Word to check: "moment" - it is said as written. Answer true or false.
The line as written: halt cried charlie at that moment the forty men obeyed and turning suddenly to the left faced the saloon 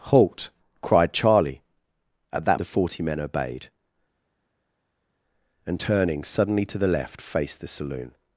false